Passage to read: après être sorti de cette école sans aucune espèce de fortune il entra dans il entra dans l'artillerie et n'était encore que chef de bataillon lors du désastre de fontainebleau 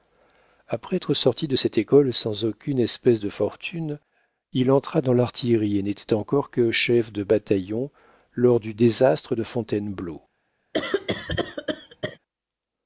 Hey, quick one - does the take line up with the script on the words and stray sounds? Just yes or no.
no